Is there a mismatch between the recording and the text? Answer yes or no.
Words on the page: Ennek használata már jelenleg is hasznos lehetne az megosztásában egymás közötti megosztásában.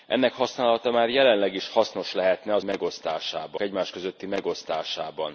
no